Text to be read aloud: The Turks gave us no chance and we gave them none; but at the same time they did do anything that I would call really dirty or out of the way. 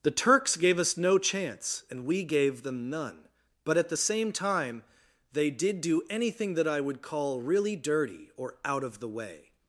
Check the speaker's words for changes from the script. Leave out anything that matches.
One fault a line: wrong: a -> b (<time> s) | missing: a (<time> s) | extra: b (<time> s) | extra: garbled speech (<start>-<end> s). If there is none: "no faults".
no faults